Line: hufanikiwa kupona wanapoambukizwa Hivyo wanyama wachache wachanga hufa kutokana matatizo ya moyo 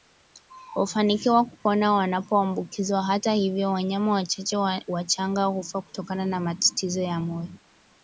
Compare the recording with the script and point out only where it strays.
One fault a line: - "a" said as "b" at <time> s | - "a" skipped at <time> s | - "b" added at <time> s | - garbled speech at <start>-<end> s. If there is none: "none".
- "Hata" added at 3.0 s
- "na" added at 6.3 s